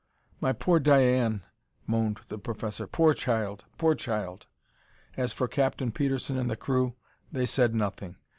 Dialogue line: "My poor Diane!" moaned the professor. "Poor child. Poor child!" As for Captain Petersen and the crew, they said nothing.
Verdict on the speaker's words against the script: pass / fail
pass